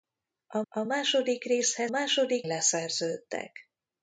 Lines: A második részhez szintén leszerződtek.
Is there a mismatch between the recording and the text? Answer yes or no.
yes